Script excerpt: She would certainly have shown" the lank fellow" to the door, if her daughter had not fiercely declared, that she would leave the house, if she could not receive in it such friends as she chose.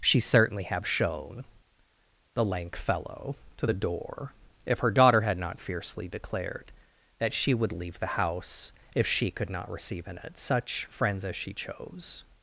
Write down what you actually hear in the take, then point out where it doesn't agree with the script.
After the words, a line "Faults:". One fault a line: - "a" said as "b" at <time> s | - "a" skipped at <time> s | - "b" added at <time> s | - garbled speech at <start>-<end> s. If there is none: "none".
She certainly have shown" the lank fellow" to the door, if her daughter had not fiercely declared, that she would leave the house, if she could not receive in it such friends as she chose.
Faults:
- "would" skipped at 0.2 s